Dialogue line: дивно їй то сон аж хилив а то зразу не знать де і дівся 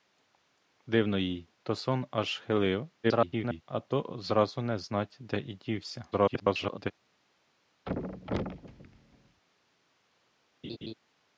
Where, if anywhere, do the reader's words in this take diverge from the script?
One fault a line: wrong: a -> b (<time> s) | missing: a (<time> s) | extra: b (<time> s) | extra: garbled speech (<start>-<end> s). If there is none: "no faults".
extra: garbled speech (3.0-3.6 s)
extra: garbled speech (6.1-6.9 s)